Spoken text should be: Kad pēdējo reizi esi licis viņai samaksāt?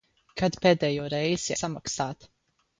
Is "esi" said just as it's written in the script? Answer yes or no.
no